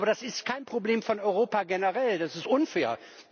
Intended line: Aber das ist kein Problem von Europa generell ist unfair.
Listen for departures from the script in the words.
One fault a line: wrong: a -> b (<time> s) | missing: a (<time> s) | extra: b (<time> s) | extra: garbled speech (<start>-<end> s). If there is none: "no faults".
extra: das (2.2 s)